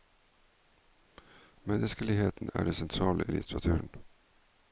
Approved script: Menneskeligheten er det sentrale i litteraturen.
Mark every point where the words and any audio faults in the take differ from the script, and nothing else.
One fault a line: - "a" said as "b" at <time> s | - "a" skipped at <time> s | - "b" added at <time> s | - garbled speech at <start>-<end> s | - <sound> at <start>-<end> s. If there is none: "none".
none